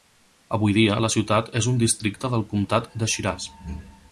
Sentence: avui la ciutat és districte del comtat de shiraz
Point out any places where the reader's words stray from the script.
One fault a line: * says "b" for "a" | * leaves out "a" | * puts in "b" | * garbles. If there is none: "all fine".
* puts in "dia"
* puts in "un"